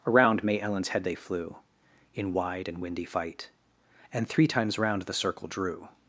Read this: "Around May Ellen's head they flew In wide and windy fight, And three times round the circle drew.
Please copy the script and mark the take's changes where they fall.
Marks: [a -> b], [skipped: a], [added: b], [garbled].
"Around May Ellen's head they flew In wide and windy fight, And three times round the circle drew.